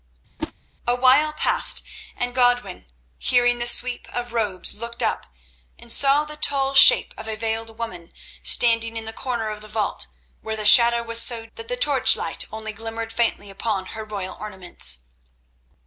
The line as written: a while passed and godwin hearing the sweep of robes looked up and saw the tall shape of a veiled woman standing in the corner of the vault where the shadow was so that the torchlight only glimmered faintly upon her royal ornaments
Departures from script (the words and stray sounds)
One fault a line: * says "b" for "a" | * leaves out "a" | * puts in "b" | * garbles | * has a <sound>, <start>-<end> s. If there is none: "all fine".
* has a whoosh, 0.4-0.5 s